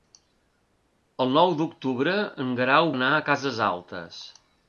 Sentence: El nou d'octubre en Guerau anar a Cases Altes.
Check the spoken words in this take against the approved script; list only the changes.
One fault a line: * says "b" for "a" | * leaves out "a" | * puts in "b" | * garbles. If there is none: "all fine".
all fine